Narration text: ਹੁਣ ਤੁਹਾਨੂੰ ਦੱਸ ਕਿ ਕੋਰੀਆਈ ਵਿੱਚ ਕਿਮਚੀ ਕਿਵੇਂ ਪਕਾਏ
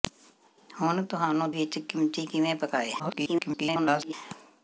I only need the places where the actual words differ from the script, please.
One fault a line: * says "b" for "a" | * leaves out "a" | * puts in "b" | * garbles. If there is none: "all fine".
* leaves out "ਦੱਸ ਕਿ ਕੋਰੀਆਈ"
* garbles